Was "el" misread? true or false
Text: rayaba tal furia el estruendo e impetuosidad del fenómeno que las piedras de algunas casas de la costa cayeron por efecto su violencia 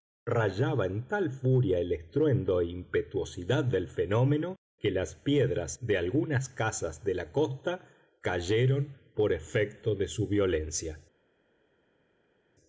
false